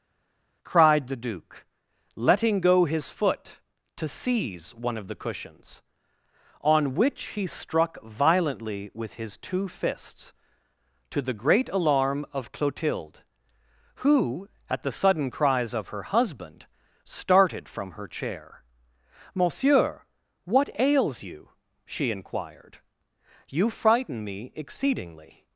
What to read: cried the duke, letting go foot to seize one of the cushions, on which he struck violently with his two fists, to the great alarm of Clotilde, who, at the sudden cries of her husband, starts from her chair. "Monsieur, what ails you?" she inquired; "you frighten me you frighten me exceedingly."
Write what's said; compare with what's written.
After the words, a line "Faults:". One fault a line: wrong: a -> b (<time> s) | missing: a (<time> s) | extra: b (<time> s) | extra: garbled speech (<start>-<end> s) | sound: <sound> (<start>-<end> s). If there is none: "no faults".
cried the duke, letting go his foot to seize one of the cushions, on which he struck violently with his two fists, to the great alarm of Clotilde, who, at the sudden cries of her husband, started from her chair. "Monsieur, what ails you?" she inquired; "you frighten me exceedingly."
Faults:
extra: his (2.9 s)
wrong: starts -> started (17.0 s)
missing: you frighten me (24.5 s)